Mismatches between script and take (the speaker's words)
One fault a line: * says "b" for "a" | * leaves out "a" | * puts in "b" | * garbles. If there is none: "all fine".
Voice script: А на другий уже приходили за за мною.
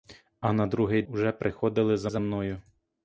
all fine